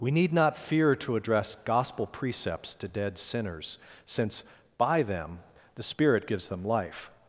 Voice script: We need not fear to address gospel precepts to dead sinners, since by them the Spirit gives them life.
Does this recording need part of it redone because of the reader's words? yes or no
no